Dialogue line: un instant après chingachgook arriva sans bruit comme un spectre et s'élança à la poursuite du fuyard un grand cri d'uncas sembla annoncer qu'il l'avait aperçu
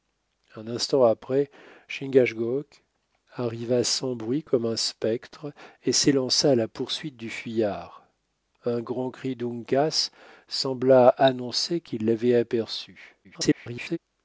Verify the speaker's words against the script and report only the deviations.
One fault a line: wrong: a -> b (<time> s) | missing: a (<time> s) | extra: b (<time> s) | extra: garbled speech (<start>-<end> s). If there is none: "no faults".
extra: garbled speech (13.2-14.0 s)